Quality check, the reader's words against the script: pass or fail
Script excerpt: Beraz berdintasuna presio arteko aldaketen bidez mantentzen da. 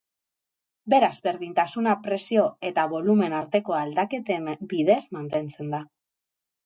fail